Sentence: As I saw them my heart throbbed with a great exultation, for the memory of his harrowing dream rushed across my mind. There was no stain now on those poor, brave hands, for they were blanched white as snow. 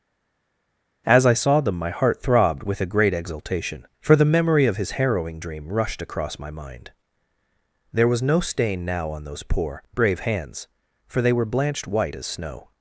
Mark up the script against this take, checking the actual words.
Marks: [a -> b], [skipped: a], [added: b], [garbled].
As I saw them my heart throbbed with a great exultation, for the memory of his harrowing dream rushed across my mind. There was no stain now on those poor, brave hands, for they were blanched white as snow.